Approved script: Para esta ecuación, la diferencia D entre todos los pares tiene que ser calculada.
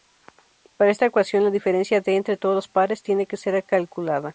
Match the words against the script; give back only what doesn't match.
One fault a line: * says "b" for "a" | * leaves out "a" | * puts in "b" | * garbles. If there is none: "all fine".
all fine